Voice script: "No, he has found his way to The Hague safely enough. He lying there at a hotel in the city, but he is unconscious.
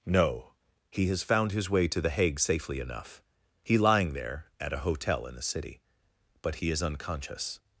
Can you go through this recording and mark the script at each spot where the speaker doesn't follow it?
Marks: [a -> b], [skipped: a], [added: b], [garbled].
"No, he has found his way to The Hague safely enough. He lying there at a hotel in the city, but he is unconscious.